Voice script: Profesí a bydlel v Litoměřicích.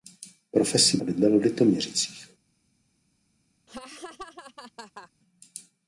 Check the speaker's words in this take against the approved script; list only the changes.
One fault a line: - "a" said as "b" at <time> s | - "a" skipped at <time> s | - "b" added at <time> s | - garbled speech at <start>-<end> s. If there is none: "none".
none